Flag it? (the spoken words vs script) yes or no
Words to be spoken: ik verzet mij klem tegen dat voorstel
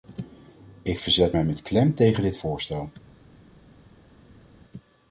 yes